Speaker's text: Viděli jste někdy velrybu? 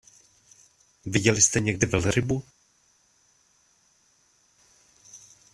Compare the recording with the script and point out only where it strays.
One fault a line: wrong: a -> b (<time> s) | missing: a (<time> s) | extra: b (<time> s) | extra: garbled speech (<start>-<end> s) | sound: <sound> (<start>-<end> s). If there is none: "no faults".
no faults